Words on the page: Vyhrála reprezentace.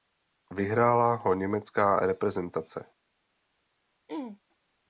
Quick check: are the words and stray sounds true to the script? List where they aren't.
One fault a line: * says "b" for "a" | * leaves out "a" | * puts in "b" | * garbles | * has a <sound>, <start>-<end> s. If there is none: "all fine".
* puts in "ho německá"
* has a throat clearing, 4.1-4.4 s